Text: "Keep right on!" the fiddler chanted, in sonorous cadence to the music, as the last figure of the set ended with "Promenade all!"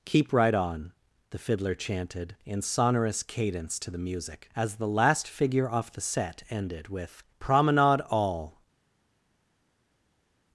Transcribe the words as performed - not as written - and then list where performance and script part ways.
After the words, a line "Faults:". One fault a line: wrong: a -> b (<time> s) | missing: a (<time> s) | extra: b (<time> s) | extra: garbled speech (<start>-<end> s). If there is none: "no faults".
"Keep right on!" the fiddler chanted, in sonorous cadence to the music, as the last figure off the set ended with "Promenade all!"
Faults:
wrong: of -> off (5.7 s)